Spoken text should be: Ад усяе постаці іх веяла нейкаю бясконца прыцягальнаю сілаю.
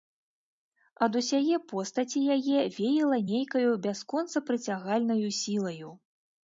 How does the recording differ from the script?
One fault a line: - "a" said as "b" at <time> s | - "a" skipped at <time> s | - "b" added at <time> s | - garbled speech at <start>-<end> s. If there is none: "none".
- "іх" said as "яе" at 2.4 s